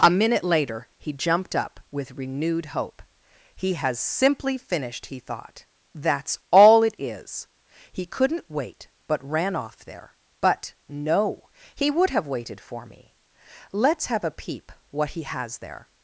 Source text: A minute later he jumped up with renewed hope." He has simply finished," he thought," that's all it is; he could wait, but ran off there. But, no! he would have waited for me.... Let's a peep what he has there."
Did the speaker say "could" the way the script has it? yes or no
no